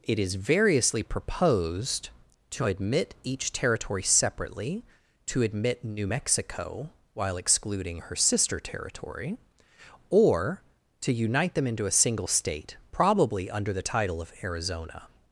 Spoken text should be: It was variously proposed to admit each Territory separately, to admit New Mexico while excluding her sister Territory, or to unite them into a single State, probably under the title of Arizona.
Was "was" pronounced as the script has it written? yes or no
no